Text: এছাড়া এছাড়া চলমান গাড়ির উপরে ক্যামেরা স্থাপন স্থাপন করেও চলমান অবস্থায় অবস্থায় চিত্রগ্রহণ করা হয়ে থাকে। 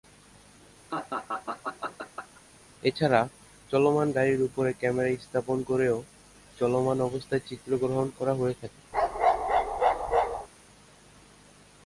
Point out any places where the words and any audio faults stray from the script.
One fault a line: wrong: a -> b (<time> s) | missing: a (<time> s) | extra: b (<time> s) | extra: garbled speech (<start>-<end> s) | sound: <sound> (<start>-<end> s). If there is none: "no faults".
sound: laugh (0.9-2.4 s)
missing: এছাড়া (3.2 s)
missing: স্থাপন (5.6 s)
missing: অবস্থায় (7.4 s)
sound: bark (8.9-10.5 s)